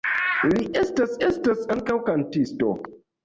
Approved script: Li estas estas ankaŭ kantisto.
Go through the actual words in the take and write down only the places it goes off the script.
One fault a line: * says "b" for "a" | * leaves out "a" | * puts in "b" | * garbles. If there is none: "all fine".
all fine